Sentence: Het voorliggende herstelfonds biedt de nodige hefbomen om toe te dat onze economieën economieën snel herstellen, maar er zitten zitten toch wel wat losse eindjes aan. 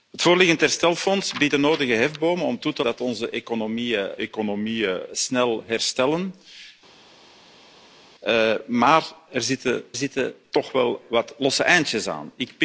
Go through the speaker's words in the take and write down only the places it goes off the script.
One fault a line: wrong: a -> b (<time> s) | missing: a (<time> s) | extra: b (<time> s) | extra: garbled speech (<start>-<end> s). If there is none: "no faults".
no faults